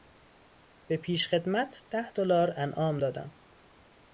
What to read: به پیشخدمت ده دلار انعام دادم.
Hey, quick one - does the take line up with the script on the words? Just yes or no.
yes